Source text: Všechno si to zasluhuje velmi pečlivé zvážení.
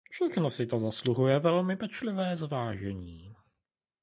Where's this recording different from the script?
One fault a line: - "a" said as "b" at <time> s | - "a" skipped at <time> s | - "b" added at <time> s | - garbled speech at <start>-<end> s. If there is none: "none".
none